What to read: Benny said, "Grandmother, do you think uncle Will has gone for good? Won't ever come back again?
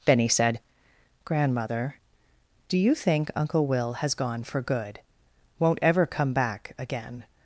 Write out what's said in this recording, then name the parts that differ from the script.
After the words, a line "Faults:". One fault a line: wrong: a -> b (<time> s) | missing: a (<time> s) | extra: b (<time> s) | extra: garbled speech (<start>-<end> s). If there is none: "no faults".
Benny said, "Grandmother, do you think uncle Will has gone for good? Won't ever come back again?
Faults:
no faults